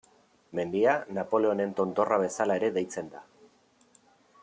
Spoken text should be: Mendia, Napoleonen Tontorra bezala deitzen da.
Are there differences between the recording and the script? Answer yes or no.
yes